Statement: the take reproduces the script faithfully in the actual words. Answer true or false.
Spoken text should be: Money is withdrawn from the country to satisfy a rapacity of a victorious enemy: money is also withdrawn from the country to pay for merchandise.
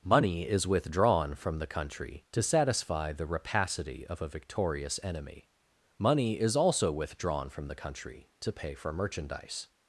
false